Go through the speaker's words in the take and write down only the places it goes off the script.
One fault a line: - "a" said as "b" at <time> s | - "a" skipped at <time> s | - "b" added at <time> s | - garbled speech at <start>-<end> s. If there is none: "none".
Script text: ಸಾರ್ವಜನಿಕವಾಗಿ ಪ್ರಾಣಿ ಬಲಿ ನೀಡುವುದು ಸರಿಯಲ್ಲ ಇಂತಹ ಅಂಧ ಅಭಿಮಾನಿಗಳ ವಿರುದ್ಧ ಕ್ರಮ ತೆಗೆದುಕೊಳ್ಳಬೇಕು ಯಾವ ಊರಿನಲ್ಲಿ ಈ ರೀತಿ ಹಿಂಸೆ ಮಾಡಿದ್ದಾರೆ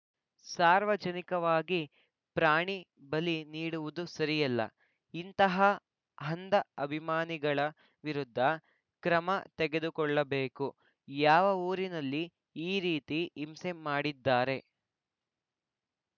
none